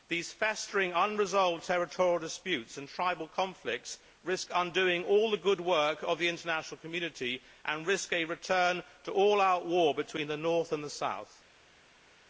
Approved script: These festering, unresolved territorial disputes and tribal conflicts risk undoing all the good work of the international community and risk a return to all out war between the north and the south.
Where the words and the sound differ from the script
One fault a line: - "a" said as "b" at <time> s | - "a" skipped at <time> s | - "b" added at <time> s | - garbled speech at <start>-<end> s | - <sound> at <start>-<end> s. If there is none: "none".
none